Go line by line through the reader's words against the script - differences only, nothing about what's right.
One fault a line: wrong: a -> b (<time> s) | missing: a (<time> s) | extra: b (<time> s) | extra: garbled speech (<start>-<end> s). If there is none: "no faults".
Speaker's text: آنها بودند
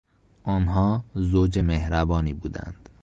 extra: زوج مهربانی (1.1 s)